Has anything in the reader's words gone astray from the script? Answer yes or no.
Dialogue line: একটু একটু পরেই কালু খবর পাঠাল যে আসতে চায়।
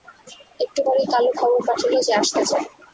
yes